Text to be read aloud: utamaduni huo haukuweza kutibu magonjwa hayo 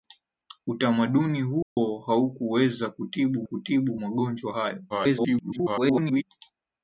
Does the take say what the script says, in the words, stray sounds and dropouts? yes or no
no